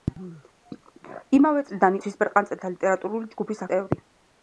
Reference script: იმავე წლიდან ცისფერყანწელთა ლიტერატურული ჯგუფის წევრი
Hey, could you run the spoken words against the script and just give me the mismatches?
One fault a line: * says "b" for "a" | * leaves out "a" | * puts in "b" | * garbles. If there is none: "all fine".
all fine